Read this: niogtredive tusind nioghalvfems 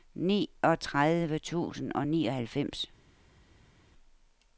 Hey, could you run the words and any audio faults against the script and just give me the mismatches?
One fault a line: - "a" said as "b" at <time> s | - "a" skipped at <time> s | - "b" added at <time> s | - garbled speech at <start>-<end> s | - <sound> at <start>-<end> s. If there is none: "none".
- "og" added at 1.9 s